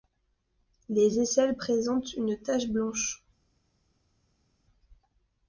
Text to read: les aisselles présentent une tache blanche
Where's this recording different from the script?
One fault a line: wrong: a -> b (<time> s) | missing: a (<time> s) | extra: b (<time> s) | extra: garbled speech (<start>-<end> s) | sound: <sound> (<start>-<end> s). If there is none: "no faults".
no faults